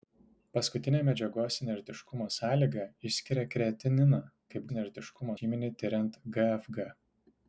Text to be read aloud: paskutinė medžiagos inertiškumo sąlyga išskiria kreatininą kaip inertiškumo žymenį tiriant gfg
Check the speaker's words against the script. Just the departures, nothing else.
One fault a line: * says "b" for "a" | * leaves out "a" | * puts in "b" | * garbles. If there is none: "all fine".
all fine